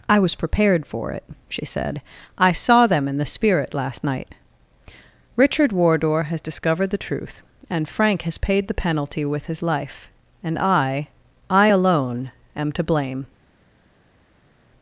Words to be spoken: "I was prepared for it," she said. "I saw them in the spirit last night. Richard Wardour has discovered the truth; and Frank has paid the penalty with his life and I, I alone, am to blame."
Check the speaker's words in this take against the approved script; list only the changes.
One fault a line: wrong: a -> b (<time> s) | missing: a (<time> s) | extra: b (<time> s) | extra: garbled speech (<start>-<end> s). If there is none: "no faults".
no faults